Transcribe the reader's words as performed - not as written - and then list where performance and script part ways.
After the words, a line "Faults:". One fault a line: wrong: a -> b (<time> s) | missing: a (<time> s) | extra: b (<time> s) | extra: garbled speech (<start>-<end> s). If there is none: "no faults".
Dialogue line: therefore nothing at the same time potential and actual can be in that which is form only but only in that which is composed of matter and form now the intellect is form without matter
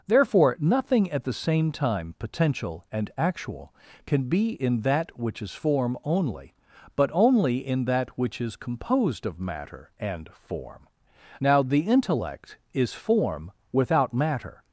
therefore nothing at the same time potential and actual can be in that which is form only but only in that which is composed of matter and form now the intellect is form without matter
Faults:
no faults